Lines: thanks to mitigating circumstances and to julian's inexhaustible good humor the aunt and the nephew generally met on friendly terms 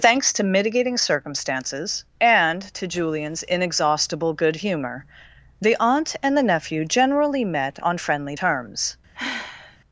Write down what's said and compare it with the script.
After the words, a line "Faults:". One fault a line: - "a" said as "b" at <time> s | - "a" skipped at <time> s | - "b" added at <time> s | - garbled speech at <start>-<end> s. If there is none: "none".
thanks to mitigating circumstances and to julian's inexhaustible good humor the aunt and the nephew generally met on friendly terms
Faults:
none